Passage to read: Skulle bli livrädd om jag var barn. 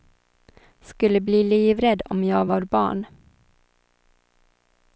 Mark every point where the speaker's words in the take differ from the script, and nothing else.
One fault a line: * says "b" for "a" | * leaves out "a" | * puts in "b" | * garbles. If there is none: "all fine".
all fine